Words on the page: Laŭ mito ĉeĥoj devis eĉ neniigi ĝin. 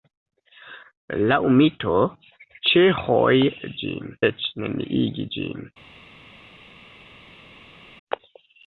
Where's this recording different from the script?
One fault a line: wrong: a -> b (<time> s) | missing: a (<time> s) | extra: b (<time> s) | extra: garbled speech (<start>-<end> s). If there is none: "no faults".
wrong: devis -> ĝin (3.9 s)